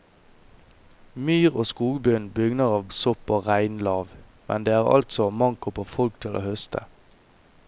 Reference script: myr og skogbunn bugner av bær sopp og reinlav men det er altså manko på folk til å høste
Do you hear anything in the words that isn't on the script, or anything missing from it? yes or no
yes